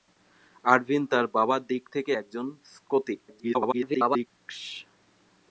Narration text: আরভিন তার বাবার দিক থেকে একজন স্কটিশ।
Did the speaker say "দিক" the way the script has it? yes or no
yes